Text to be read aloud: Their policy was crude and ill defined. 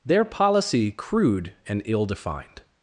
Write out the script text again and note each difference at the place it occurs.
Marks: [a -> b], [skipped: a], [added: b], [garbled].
Their policy [skipped: was] crude and ill defined.